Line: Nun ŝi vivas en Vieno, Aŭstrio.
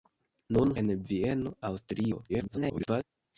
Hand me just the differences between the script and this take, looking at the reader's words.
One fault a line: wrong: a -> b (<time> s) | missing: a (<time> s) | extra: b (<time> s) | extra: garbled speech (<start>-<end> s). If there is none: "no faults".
missing: ŝi vivas (0.7 s)
extra: garbled speech (2.3-3.0 s)